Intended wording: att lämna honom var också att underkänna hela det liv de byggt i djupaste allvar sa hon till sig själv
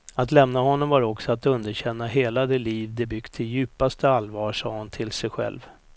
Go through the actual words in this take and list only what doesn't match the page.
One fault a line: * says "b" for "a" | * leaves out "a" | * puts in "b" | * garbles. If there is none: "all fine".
all fine